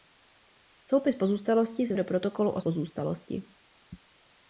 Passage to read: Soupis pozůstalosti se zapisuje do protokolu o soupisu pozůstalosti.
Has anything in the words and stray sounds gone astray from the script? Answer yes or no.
yes